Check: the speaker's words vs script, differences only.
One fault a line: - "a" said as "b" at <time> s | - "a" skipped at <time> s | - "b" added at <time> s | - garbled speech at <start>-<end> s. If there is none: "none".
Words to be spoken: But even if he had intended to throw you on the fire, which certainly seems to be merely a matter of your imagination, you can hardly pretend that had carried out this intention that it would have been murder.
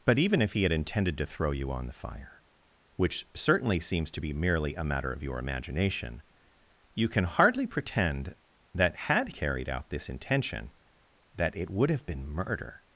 none